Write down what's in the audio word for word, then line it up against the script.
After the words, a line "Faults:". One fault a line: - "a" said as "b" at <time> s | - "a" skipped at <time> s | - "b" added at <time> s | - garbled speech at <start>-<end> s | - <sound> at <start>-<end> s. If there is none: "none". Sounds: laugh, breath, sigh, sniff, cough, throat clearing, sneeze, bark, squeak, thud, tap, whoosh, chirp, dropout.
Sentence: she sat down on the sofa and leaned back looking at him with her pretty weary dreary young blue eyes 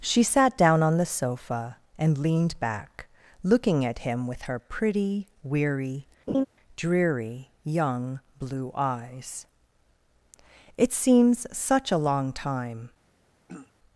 she sat down on the sofa and leaned back looking at him with her pretty weary dreary young blue eyes it seems such a long time
Faults:
- laugh at 6.3-6.5 s
- "it seems such a long time" added at 10.7 s
- throat clearing at 13.5-13.7 s